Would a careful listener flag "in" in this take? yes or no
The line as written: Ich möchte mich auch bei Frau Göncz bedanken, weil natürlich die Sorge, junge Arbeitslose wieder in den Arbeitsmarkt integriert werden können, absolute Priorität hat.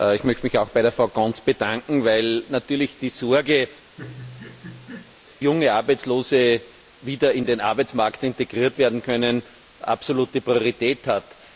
no